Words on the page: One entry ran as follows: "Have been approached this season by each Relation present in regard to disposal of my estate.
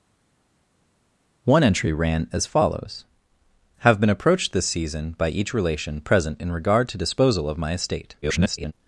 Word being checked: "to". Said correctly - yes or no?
yes